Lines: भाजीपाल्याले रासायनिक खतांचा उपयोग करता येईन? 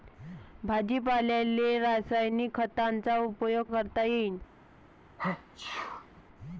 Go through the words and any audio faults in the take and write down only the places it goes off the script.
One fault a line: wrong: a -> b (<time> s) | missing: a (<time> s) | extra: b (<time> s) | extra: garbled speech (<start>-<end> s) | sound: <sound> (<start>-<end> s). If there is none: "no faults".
sound: sneeze (5.2-6.2 s)